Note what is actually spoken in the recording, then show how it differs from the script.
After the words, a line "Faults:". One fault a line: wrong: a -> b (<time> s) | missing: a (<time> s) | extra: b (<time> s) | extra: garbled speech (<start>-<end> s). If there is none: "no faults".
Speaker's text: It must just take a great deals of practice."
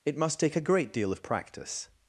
It must take a great deal of practice."
Faults:
missing: just (0.4 s)
wrong: deals -> deal (0.9 s)